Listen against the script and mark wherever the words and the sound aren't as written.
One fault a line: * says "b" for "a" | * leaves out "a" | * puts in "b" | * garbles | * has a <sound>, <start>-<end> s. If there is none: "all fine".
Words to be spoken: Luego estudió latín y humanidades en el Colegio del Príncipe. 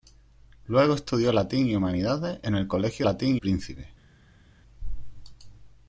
* says "latín" for "del"